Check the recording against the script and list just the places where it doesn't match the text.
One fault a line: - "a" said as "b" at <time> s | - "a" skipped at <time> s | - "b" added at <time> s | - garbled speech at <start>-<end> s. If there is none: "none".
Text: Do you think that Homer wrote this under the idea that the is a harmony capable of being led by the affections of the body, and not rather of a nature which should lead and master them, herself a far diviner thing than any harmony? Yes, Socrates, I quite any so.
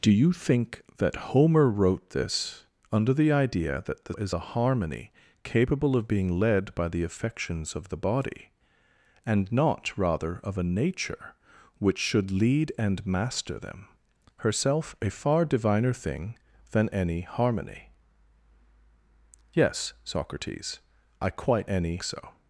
none